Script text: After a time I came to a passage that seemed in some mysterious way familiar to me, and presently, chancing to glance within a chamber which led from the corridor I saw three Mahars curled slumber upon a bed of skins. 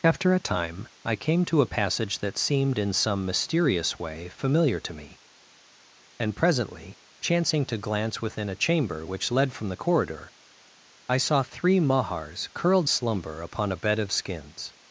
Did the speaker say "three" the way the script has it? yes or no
yes